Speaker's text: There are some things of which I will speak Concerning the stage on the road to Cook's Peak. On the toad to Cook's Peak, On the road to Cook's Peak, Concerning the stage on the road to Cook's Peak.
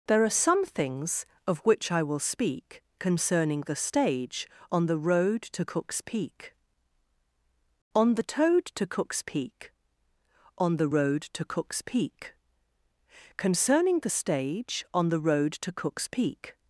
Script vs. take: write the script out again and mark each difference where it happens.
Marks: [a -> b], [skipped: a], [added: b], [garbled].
There are some things of which I will speak Concerning the stage on the road to Cook's Peak. On the toad to Cook's Peak, On the road to Cook's Peak, Concerning the stage on the road to Cook's Peak.